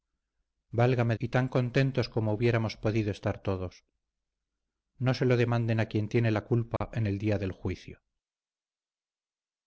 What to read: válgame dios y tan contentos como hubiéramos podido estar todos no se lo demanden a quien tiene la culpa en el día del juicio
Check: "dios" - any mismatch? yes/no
yes